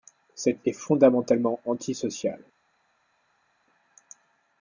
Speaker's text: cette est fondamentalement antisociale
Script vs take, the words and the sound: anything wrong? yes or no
no